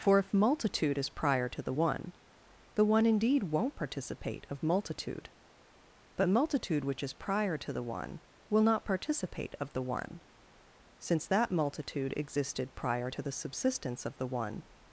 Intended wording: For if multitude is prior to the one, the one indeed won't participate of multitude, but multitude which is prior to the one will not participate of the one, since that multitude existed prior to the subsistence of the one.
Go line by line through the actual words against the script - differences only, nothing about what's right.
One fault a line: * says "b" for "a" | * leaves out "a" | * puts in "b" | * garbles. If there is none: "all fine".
all fine